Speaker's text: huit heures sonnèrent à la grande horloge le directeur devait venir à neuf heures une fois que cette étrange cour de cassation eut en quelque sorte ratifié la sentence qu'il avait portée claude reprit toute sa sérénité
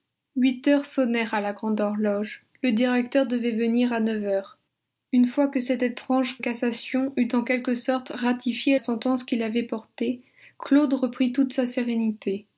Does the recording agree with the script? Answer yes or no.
no